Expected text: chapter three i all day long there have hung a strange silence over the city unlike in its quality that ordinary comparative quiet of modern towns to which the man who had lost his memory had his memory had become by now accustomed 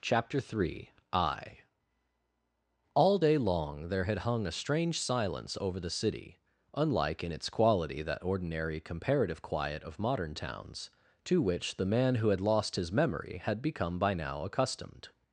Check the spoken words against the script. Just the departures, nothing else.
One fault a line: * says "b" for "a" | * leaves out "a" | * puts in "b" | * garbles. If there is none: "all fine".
* says "had" for "have"
* leaves out "his memory had"